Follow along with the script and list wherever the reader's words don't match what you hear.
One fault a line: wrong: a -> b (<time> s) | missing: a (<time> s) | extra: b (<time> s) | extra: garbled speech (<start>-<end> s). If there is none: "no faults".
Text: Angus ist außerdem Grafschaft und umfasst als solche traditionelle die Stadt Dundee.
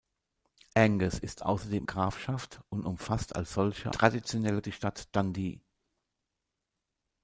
no faults